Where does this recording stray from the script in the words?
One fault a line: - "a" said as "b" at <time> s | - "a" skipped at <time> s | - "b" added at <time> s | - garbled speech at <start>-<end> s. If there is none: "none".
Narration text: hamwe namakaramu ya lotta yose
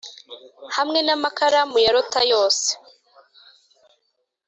none